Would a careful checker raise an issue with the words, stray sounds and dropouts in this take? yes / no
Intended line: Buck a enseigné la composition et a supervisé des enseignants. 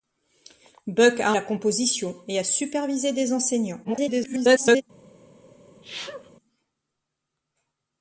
yes